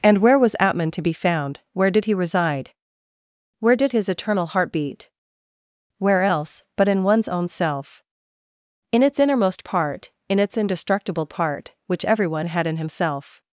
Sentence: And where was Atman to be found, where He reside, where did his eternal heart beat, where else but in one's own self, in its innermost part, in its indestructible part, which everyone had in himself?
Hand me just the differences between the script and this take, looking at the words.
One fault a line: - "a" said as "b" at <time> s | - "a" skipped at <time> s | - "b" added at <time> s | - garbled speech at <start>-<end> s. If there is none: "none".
- "did" added at 1.9 s